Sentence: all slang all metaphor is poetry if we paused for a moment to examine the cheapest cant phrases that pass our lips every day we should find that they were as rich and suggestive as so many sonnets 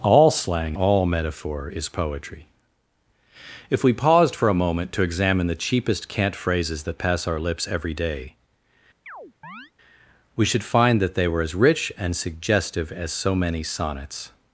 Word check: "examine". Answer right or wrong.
right